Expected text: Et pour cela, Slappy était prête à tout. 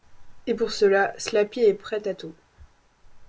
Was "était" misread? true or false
true